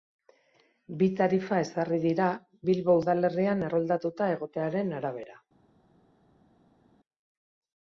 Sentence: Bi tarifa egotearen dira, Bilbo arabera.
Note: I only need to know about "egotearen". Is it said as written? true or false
false